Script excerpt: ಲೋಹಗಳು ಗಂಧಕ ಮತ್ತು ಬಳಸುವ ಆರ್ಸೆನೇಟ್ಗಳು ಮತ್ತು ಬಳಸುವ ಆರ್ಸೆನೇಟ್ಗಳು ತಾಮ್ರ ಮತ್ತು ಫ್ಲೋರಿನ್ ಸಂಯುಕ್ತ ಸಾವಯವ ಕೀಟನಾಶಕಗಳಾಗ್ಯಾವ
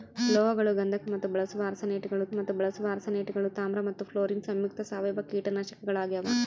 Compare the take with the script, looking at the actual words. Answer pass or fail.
pass